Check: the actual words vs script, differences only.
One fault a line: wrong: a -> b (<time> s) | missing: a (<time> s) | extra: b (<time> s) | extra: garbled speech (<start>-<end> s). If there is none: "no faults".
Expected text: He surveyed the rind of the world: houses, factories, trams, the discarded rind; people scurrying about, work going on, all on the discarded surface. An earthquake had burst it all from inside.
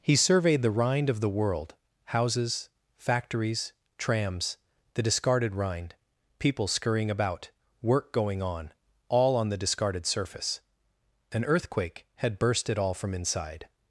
no faults